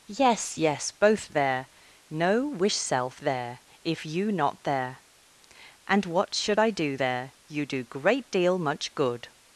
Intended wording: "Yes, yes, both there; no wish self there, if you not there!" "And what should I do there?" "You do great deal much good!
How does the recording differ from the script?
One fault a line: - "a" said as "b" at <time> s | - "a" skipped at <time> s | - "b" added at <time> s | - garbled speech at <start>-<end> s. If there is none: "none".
none